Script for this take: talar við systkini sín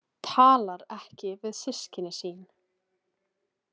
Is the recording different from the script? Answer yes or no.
yes